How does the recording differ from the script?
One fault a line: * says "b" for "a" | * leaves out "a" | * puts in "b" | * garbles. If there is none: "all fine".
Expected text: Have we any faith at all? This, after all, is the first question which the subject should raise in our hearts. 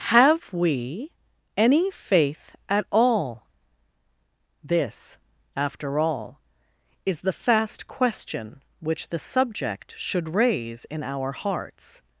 * says "fast" for "first"